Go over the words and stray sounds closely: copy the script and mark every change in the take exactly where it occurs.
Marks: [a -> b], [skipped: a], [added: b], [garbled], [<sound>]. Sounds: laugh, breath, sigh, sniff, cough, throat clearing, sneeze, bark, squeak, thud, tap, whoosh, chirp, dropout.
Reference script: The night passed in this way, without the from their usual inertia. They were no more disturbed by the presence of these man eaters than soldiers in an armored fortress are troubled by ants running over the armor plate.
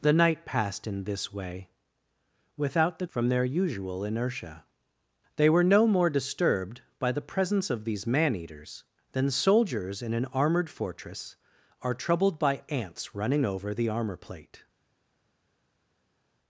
The night passed in this way, without the from their usual inertia. They were no more disturbed by the presence of these man eaters than soldiers in an armored fortress are troubled by ants running over the armor plate.